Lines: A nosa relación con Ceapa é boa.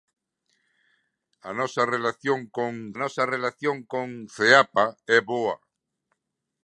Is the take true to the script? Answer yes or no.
no